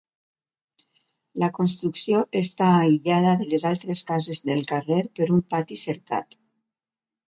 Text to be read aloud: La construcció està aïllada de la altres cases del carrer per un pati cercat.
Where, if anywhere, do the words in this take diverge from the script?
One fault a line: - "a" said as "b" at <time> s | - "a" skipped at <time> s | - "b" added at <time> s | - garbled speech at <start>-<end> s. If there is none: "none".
- "la" said as "les" at 3.5 s